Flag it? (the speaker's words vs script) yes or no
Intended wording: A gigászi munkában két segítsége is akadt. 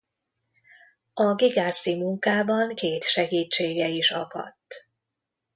no